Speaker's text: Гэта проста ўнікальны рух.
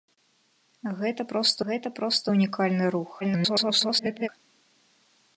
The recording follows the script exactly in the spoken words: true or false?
false